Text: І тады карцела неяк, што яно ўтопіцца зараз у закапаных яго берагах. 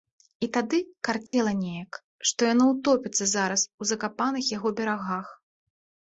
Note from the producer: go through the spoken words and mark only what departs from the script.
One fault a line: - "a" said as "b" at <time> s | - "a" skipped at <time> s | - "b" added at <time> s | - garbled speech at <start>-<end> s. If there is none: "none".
none